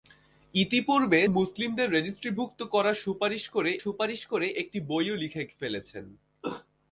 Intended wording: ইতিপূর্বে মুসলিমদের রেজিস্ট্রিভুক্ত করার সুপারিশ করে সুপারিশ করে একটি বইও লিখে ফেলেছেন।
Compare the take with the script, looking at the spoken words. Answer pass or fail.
pass